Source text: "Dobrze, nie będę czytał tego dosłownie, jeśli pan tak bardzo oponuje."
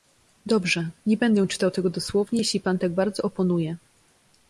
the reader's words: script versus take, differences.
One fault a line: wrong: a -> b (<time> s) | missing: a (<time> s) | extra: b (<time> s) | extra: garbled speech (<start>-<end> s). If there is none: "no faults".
no faults